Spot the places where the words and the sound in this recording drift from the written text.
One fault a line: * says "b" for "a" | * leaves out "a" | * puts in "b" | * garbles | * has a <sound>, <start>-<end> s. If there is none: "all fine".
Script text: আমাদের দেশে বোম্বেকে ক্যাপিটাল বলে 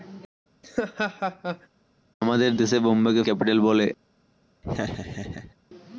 * has a laugh, 0.6-1.7 s
* has a laugh, 4.6-5.5 s